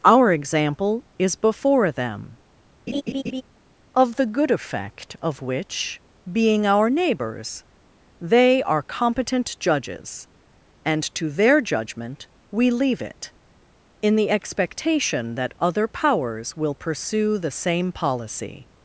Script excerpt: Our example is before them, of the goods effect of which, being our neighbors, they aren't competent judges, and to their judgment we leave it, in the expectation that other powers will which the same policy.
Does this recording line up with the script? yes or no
no